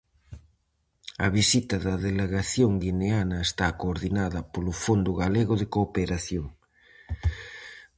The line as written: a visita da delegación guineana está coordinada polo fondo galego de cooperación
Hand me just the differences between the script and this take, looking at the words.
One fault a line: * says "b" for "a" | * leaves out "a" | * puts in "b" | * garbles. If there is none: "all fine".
all fine